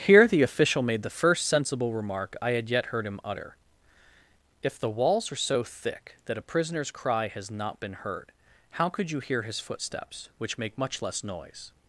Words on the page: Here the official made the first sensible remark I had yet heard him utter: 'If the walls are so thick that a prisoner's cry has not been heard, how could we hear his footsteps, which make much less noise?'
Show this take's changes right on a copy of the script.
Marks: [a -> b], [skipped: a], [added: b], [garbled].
Here the official made the first sensible remark I had yet heard him utter: 'If the walls are so thick that a prisoner's cry has not been heard, how could [we -> you] hear his footsteps, which make much less noise?'